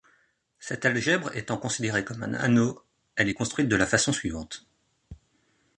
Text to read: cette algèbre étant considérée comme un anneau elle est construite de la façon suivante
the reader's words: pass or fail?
pass